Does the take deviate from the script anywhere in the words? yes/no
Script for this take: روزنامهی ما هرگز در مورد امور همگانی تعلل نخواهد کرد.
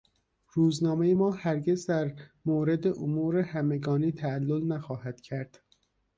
no